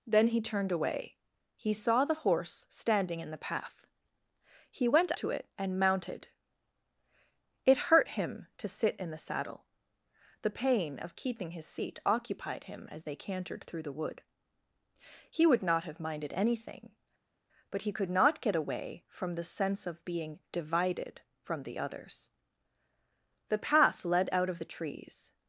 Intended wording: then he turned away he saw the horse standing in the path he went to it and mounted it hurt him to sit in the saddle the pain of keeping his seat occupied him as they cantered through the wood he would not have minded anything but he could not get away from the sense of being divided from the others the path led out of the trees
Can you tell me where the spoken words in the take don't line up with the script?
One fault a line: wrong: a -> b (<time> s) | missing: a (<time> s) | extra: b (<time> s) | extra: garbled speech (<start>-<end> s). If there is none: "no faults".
no faults